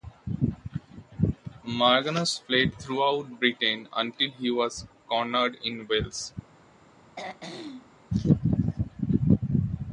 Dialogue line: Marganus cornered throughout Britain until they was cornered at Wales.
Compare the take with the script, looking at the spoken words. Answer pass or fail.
fail